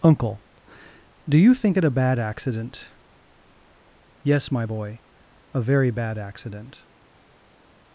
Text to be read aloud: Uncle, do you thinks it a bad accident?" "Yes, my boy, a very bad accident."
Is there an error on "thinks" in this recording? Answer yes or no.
yes